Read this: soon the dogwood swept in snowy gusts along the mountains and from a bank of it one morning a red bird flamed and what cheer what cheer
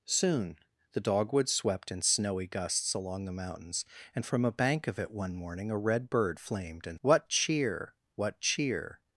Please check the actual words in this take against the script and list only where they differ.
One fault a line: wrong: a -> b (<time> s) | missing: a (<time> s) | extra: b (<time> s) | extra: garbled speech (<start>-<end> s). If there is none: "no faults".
no faults